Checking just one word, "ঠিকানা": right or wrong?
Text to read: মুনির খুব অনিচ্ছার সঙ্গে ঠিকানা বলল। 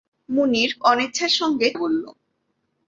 wrong